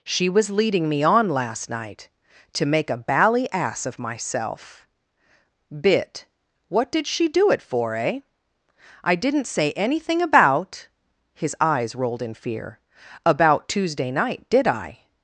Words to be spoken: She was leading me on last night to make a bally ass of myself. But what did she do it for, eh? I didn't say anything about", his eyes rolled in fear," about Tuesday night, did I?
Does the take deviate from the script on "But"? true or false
true